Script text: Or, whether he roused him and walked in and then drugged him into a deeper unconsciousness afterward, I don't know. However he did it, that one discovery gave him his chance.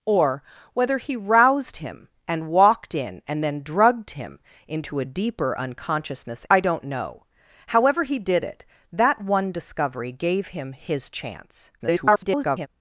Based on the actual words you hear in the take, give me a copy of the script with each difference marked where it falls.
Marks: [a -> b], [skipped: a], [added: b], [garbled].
Or, whether he roused him and walked in and then drugged him into a deeper unconsciousness [skipped: afterward,] I don't know. However he did it, that one discovery gave him his chance. [garbled]